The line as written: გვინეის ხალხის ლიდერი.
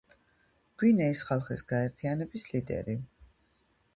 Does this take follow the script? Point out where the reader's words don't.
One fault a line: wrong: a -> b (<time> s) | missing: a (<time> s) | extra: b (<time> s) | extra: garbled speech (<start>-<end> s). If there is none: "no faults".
extra: გაერთიანების (1.7 s)